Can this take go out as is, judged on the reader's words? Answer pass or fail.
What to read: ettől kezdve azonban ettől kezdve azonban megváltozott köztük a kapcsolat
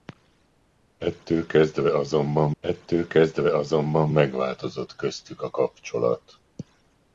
pass